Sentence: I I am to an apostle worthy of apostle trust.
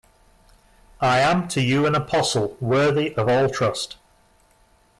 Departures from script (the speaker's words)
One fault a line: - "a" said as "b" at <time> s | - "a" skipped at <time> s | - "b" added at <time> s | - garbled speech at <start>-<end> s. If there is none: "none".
- "I" skipped at 1.2 s
- "you" added at 1.6 s
- "apostle" said as "all" at 3.3 s